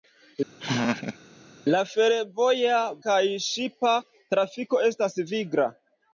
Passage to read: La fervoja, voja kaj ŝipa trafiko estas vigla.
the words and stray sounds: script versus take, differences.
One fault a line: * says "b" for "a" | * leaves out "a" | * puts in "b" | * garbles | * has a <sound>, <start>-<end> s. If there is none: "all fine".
* has a laugh, 0.6-1.2 s
* leaves out "voja"